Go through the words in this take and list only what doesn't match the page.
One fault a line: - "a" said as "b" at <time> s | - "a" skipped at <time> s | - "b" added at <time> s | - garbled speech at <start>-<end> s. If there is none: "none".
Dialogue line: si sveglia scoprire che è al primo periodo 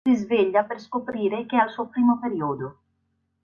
- "per" added at 0.6 s
- "suo" added at 1.7 s